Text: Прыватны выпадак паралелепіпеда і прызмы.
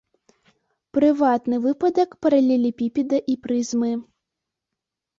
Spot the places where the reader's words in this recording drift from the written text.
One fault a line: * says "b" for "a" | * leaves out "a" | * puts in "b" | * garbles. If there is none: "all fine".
all fine